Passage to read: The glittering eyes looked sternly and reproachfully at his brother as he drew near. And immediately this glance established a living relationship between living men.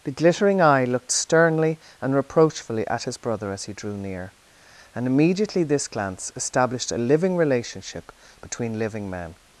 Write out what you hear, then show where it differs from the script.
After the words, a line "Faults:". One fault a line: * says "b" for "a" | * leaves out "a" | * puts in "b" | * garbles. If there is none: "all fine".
The glittering eye looked sternly and reproachfully at his brother as he drew near. And immediately this glance established a living relationship between living men.
Faults:
* says "eye" for "eyes"